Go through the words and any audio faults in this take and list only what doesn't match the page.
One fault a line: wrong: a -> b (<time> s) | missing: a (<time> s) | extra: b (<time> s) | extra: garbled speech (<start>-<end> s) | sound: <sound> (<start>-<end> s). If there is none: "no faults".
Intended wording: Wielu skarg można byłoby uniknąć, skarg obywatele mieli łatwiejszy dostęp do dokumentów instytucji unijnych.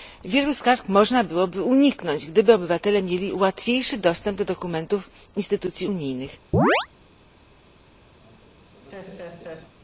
wrong: skarg -> gdyby (2.2 s)
sound: chirp (6.5-6.9 s)
sound: laugh (8.2-9.7 s)